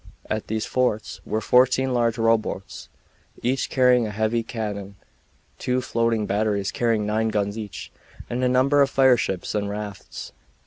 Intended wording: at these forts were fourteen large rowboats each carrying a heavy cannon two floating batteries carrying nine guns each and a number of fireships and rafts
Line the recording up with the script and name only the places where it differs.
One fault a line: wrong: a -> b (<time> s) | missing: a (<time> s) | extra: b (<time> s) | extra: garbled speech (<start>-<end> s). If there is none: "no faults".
no faults